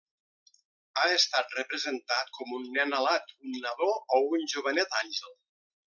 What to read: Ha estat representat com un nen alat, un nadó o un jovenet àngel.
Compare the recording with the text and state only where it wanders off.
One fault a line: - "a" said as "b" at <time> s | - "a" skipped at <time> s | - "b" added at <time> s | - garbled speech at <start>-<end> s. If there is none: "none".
none